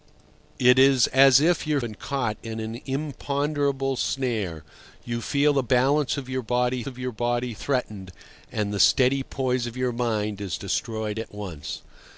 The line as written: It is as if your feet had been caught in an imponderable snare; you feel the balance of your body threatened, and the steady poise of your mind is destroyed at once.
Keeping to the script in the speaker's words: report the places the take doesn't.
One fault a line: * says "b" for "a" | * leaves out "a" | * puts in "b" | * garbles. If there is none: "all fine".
* leaves out "feet had"
* puts in "of your body"